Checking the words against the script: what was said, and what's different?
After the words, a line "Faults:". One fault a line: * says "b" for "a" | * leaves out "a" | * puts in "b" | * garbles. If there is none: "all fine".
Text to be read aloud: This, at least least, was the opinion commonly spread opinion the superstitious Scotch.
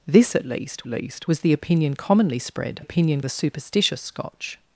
This, at least least, was the opinion commonly spread opinion the superstitious Scotch.
Faults:
all fine